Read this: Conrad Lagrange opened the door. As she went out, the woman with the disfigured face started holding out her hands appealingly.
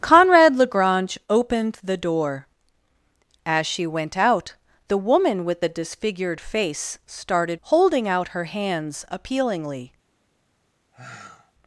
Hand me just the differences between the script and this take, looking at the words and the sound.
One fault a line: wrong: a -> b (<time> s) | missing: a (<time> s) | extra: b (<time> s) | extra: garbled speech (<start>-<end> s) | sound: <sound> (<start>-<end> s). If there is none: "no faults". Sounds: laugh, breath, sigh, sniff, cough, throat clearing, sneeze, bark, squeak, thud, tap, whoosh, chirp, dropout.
sound: sigh (10.9-11.5 s)